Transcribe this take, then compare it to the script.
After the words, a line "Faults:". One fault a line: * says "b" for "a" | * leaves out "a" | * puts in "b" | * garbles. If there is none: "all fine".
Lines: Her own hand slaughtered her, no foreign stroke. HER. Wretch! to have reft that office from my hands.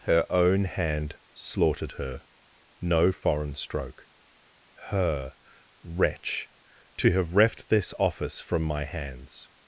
Her own hand slaughtered her, no foreign stroke. HER. Wretch! to have reft this office from my hands.
Faults:
* says "this" for "that"